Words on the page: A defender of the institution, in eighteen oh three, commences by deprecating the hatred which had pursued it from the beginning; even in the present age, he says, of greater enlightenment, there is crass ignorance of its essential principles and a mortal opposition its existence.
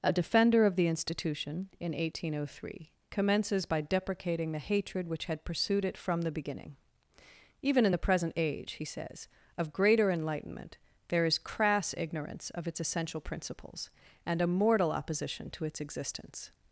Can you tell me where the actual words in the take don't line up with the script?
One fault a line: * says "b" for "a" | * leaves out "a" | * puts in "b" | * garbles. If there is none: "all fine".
* puts in "to"